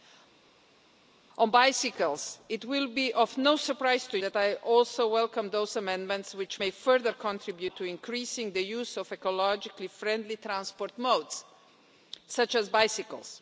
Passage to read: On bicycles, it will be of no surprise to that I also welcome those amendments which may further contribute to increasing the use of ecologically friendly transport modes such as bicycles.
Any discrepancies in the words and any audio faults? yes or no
no